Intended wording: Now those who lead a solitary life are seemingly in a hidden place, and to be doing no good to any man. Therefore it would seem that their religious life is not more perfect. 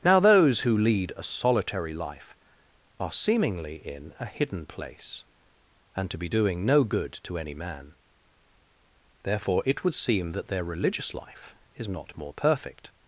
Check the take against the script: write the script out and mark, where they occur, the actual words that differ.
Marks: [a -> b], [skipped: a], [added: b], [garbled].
Now those who lead a solitary life are seemingly in a hidden place, and to be doing no good to any man. Therefore it would seem that their religious life is not more perfect.